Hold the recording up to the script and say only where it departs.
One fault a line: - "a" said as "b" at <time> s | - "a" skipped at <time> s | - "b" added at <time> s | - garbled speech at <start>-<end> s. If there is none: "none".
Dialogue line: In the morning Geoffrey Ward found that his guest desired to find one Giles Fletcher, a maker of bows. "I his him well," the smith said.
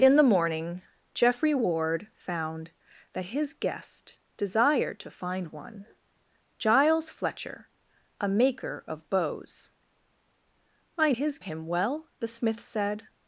none